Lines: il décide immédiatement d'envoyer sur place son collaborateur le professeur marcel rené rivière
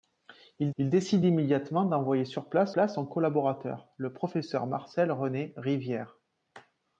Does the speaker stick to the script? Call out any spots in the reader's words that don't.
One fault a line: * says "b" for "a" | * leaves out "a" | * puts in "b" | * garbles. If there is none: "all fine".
* puts in "il"
* puts in "place"